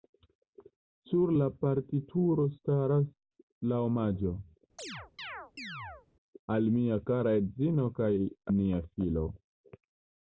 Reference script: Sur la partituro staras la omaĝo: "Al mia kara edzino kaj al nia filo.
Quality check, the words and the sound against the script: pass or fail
fail